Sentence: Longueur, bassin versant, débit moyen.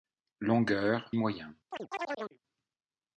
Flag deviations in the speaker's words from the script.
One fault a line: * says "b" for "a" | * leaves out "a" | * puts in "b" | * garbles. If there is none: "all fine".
* leaves out "bassin versant débit"